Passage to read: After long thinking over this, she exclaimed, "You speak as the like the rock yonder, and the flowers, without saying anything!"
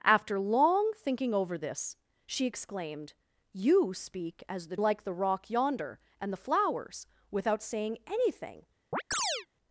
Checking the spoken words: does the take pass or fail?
pass